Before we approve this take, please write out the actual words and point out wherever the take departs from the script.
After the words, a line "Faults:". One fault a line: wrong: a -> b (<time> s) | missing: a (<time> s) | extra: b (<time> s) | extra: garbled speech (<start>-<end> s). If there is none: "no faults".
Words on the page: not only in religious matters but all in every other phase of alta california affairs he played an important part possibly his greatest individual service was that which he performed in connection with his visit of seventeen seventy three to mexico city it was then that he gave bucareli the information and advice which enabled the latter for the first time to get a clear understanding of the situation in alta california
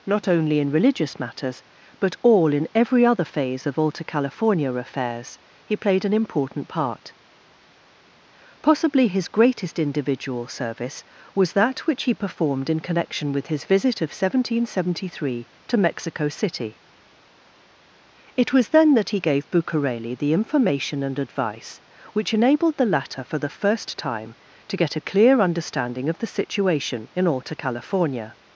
not only in religious matters but all in every other phase of alta california affairs he played an important part possibly his greatest individual service was that which he performed in connection with his visit of seventeen seventy three to mexico city it was then that he gave bucareli the information and advice which enabled the latter for the first time to get a clear understanding of the situation in alta california
Faults:
no faults